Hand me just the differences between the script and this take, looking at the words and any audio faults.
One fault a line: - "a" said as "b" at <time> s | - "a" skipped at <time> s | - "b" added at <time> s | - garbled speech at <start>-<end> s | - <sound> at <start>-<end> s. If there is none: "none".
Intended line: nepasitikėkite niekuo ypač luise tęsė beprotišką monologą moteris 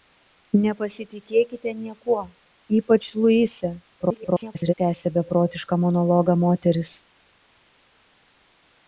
- garbled speech at 4.0-4.7 s